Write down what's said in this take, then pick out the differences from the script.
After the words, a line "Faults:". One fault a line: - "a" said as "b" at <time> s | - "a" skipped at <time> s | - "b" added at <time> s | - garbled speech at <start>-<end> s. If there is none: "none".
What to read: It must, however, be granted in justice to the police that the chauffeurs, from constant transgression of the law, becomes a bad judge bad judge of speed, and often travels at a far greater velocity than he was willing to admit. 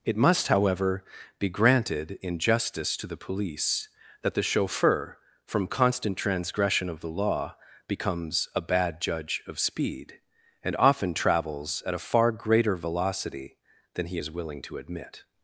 It must, however, be granted in justice to the police that the chauffeur, from constant transgression of the law, becomes a bad judge of speed, and often travels at a far greater velocity than he is willing to admit.
Faults:
- "chauffeurs" said as "chauffeur" at 4.4 s
- "bad judge" skipped at 9.4 s
- "was" said as "is" at 14.2 s